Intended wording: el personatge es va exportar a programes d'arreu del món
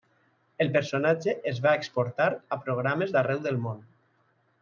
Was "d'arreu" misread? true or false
false